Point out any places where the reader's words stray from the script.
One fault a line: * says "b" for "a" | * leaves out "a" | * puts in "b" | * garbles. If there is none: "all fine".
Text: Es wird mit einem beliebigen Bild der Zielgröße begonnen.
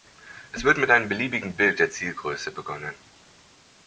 all fine